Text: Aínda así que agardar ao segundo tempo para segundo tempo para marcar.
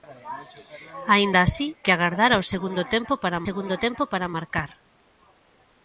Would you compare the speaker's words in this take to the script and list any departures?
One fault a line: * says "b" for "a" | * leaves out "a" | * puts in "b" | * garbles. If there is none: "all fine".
all fine